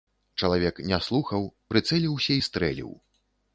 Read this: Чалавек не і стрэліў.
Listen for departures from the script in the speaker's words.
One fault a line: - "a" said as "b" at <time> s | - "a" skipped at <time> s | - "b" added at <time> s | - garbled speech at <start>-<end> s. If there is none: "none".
- "слухаў прыцэліўся" added at 1.1 s